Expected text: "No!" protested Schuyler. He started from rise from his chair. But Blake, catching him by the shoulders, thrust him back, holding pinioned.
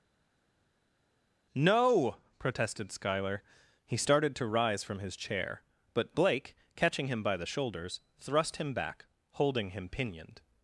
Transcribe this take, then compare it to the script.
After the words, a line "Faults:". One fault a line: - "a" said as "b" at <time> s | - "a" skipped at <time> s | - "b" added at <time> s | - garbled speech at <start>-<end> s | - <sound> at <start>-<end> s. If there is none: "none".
"No!" protested Schuyler. He started to rise from his chair. But Blake, catching him by the shoulders, thrust him back, holding him pinioned.
Faults:
- "from" said as "to" at 4.4 s
- "him" added at 9.7 s